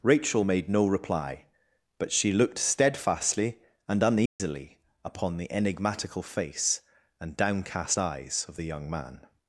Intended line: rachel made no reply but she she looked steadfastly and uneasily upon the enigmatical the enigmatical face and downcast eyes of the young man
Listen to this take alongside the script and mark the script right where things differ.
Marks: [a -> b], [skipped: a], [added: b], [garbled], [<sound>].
rachel made no reply but she [skipped: she] looked steadfastly and uneasily [dropout] upon the enigmatical [skipped: the enigmatical] face and downcast eyes of the young man